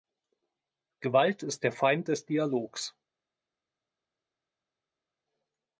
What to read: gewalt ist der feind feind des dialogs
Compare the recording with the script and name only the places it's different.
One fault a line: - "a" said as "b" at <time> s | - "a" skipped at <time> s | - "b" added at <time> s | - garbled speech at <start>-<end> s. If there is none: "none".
- "feind" skipped at 2.1 s